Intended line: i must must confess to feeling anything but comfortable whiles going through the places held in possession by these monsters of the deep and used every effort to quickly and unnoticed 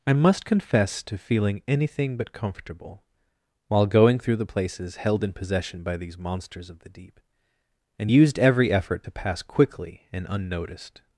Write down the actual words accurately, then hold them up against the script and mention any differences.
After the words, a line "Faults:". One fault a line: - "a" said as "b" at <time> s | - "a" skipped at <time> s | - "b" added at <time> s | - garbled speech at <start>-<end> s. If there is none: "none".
i must confess to feeling anything but comfortable while going through the places held in possession by these monsters of the deep and used every effort to pass quickly and unnoticed
Faults:
- "must" skipped at 0.5 s
- "whiles" said as "while" at 3.7 s
- "pass" added at 9.1 s